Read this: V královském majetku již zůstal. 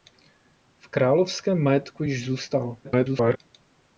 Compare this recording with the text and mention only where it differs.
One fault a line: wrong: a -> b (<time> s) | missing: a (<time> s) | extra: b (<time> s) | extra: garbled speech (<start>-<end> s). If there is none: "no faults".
extra: garbled speech (2.8-3.4 s)